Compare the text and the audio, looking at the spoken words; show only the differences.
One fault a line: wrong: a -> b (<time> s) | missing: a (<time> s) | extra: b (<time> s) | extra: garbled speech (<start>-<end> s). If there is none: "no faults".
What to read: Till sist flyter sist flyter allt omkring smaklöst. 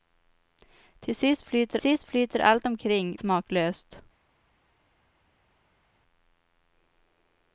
no faults